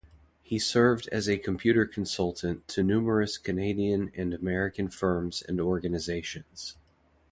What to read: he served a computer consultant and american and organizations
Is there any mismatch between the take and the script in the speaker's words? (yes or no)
yes